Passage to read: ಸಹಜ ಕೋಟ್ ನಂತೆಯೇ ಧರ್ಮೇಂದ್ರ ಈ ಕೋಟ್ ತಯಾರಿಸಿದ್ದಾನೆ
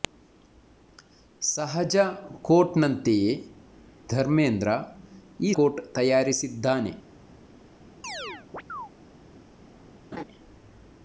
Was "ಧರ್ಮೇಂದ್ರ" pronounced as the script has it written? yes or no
yes